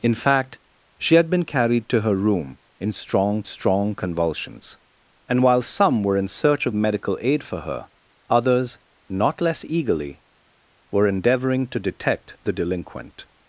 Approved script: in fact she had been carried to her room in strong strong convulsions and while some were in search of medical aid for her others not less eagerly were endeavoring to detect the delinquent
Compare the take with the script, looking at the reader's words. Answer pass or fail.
pass